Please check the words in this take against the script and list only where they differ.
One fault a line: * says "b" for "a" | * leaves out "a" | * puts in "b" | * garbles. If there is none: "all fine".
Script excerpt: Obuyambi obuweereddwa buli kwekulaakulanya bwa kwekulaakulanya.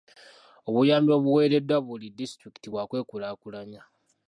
* says "disitulikiti" for "kwekulaakulanya"